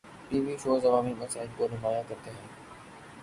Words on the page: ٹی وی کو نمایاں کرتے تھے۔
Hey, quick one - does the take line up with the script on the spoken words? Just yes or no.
no